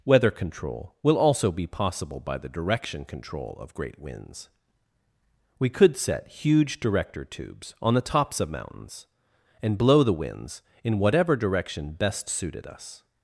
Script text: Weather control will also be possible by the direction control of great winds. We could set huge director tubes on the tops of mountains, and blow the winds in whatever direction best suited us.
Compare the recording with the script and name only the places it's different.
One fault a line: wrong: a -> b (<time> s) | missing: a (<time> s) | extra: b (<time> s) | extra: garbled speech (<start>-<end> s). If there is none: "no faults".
no faults